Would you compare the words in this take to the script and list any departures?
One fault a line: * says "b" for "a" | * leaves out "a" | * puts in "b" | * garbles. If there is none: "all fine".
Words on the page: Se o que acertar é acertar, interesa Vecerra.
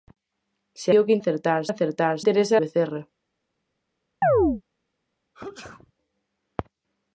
all fine